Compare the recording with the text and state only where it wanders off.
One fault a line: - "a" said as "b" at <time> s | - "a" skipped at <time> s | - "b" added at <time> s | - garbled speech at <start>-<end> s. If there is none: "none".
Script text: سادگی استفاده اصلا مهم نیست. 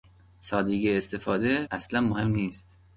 none